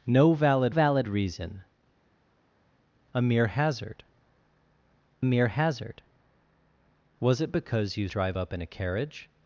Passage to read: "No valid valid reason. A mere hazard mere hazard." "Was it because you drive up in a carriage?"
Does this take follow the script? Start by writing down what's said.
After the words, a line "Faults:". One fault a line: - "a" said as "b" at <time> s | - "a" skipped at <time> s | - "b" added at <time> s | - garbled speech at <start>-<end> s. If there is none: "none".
"No valid valid reason. A mere hazard mere hazard." "Was it because you drive up in a carriage?"
Faults:
none